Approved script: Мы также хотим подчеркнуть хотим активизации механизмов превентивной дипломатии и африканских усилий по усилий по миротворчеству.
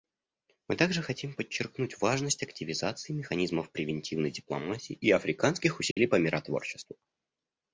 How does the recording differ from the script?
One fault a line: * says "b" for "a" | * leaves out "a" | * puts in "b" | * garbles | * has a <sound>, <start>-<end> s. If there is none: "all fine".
* says "важность" for "хотим"
* has a dropout, 5.9-6.0 s
* leaves out "усилий по"